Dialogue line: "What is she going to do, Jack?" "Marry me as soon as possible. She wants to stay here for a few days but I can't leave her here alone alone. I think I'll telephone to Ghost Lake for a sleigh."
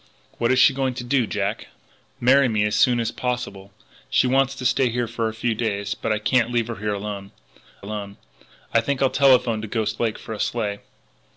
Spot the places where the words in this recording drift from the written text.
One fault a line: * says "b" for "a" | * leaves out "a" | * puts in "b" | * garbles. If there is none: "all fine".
all fine